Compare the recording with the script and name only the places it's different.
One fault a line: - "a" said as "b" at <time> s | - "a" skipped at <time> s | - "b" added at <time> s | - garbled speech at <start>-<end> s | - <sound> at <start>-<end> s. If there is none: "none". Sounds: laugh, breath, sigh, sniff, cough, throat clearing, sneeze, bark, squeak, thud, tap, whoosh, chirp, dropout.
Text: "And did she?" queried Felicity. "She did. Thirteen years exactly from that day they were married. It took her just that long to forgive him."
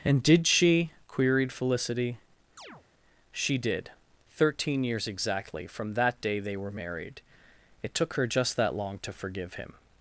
- chirp at 2.6-2.8 s